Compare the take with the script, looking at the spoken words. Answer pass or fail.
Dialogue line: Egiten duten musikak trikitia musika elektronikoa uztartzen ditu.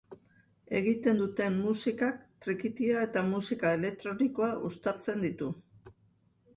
fail